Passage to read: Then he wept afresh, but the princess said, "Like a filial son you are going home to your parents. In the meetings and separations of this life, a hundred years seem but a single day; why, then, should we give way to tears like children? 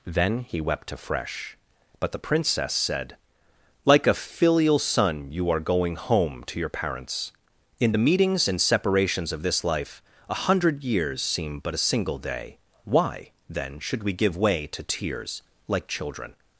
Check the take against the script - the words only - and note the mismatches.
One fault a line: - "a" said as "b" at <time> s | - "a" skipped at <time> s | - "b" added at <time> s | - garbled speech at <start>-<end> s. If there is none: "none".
none